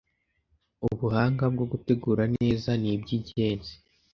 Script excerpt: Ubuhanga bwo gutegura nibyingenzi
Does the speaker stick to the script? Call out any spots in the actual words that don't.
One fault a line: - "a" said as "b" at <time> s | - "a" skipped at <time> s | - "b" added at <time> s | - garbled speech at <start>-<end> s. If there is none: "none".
- "neza" added at 2.4 s